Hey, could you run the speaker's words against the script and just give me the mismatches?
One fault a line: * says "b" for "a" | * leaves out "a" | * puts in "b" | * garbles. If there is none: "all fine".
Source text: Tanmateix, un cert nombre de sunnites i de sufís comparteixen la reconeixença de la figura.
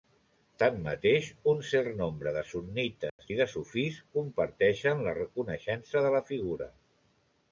all fine